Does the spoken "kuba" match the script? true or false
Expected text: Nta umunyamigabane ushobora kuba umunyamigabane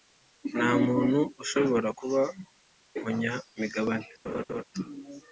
true